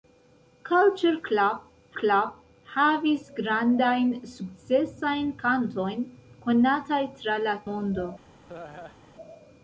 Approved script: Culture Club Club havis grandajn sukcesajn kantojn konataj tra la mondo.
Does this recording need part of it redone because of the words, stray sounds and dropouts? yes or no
yes